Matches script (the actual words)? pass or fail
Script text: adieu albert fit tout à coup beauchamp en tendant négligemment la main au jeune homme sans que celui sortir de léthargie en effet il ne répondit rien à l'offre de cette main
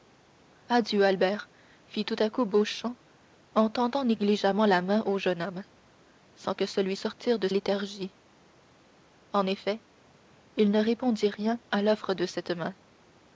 pass